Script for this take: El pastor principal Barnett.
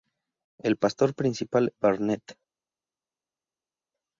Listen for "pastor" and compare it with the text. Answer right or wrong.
right